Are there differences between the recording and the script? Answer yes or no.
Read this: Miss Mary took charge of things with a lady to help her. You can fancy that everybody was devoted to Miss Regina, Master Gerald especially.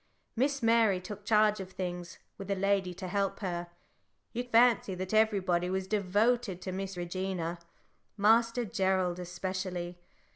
yes